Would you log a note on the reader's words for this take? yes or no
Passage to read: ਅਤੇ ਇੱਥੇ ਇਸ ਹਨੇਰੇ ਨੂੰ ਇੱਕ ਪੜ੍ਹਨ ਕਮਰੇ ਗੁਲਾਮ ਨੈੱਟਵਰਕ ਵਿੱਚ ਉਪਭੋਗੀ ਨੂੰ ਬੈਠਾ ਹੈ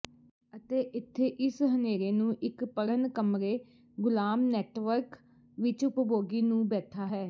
no